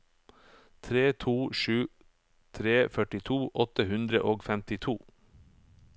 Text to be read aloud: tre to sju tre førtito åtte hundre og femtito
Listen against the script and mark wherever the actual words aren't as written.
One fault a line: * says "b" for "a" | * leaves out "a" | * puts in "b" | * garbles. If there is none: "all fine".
all fine